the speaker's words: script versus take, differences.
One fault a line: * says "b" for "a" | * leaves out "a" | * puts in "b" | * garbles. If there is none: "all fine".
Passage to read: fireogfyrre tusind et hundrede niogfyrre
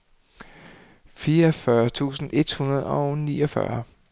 * puts in "og"